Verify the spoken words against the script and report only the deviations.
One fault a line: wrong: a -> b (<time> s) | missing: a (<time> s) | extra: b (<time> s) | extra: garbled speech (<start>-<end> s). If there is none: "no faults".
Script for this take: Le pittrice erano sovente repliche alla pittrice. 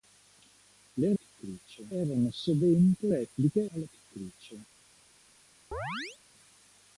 no faults